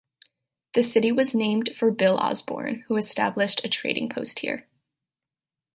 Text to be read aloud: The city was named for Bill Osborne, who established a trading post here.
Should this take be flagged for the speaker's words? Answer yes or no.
no